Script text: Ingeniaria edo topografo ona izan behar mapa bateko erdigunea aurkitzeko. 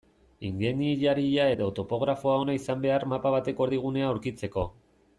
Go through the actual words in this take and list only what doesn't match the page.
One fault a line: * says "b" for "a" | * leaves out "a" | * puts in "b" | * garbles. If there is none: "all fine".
all fine